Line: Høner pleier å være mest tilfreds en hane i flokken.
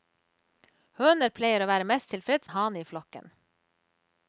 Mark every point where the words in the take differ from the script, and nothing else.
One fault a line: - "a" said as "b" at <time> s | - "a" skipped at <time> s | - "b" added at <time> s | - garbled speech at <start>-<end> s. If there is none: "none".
none